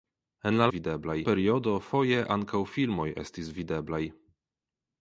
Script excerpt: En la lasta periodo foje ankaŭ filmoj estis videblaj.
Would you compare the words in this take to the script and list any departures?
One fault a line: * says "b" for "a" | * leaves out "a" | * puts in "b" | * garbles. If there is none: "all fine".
* says "videblaj" for "lasta"